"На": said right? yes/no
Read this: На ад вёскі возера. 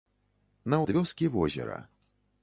yes